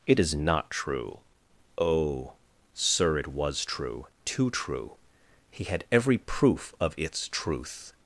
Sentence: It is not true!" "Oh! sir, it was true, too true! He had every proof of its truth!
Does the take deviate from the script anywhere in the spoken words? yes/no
no